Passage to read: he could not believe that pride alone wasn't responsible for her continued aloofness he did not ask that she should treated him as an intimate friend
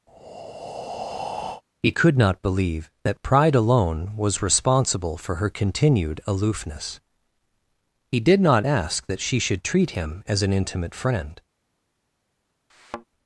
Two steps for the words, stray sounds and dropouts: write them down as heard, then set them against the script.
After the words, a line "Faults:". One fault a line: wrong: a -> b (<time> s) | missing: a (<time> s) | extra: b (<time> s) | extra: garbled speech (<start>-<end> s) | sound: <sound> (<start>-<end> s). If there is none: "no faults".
he could not believe that pride alone was responsible for her continued aloofness he did not ask that she should treat him as an intimate friend
Faults:
sound: breath (0.1-1.6 s)
wrong: wasn't -> was (4.2 s)
wrong: treated -> treat (9.6 s)
sound: thud (12.7-13.0 s)